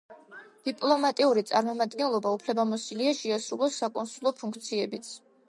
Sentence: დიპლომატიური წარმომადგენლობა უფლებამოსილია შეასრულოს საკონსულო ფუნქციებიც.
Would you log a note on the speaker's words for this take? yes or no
no